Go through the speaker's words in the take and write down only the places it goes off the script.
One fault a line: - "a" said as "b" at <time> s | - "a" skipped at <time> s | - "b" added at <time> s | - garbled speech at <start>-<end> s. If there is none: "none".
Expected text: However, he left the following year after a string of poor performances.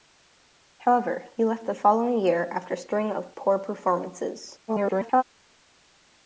- garbled speech at 4.7-5.2 s